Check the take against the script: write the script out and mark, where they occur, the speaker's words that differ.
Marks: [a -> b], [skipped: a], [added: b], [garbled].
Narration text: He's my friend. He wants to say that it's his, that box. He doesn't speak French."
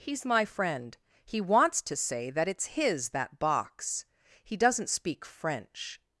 He's my friend. He wants to say that it's his, that box. He doesn't speak French."